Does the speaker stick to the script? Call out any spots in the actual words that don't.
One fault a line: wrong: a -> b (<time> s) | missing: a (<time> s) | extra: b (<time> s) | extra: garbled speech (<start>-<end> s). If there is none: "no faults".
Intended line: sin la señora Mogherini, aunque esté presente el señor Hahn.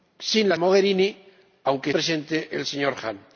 missing: señora (0.6 s)
missing: esté (1.9 s)